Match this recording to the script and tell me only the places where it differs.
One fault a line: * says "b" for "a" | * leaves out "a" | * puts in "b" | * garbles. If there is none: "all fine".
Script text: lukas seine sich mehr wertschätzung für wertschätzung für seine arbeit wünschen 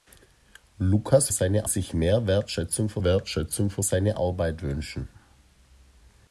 all fine